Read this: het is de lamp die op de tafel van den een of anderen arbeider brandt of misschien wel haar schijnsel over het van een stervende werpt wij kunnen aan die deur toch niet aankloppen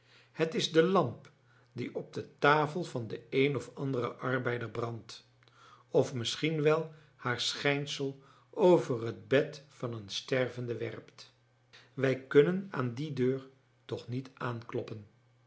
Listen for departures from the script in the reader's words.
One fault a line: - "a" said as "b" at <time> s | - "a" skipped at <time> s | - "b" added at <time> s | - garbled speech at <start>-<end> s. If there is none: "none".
- "bed" added at 9.3 s